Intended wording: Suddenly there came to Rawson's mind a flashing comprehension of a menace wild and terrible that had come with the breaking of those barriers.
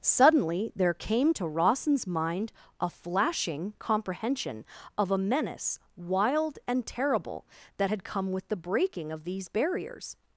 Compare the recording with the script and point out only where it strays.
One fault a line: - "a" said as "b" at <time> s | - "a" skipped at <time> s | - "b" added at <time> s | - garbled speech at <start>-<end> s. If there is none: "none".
- "those" said as "these" at 9.2 s